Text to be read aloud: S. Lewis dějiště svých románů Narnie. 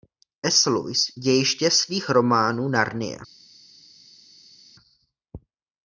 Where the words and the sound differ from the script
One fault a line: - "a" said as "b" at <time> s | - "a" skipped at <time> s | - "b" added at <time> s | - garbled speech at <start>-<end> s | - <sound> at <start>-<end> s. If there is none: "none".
none